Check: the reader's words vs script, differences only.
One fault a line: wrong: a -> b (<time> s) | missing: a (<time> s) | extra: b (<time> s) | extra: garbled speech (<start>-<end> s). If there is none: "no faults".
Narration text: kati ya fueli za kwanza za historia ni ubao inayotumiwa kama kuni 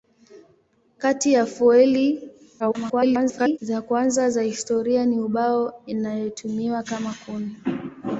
extra: garbled speech (2.6-3.6 s)